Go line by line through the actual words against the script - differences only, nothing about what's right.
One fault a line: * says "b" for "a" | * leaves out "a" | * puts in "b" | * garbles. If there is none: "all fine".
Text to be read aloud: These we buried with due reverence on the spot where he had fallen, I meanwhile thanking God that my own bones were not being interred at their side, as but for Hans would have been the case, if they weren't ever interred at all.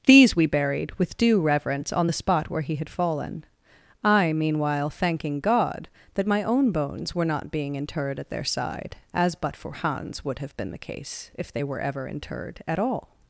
* says "were" for "weren't"